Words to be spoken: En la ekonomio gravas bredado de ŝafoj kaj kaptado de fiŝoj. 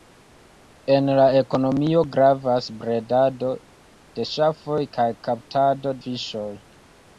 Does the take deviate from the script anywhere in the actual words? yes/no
yes